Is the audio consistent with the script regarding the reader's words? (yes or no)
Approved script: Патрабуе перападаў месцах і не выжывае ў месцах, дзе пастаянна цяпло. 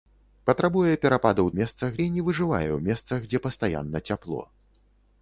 yes